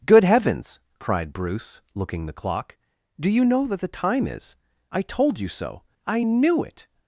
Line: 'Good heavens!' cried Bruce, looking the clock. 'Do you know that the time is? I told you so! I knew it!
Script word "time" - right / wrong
right